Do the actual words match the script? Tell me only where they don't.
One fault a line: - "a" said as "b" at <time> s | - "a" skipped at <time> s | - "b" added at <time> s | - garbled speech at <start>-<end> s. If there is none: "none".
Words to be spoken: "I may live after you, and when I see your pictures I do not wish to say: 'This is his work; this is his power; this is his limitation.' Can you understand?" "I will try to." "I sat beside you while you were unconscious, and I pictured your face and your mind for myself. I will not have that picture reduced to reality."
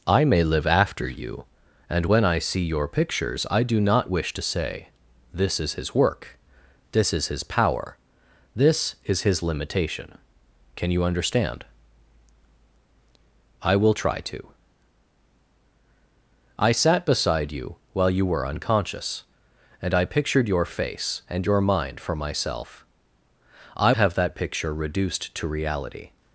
- "will not" skipped at 23.9 s